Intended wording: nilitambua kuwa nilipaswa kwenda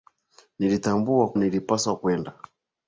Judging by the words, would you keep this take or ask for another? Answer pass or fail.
fail